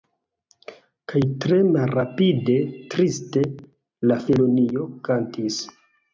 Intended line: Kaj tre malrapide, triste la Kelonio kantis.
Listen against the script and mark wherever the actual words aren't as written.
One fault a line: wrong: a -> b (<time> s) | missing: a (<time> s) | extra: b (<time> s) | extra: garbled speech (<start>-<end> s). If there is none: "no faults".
no faults